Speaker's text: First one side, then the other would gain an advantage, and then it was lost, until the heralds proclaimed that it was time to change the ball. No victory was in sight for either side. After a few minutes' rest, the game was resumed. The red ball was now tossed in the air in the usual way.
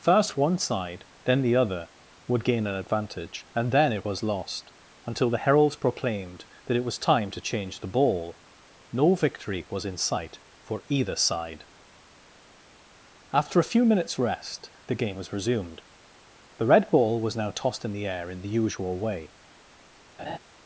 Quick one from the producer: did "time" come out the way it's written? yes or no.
yes